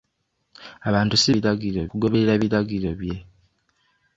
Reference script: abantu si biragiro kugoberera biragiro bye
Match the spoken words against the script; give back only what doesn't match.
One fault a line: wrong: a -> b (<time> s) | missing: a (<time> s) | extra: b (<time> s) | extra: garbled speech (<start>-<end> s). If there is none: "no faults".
no faults